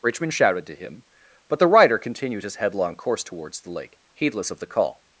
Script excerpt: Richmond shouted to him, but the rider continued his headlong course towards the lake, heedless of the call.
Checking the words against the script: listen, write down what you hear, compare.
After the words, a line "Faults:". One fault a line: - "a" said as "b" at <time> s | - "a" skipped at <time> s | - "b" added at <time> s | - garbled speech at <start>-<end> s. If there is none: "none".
Richmond shouted to him, but the rider continued his headlong course towards the lake, heedless of the call.
Faults:
none